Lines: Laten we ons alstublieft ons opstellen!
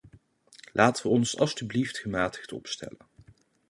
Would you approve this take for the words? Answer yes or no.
no